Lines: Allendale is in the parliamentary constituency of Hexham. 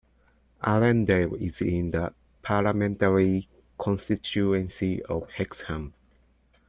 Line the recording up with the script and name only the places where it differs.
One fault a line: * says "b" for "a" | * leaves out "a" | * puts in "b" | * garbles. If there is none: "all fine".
all fine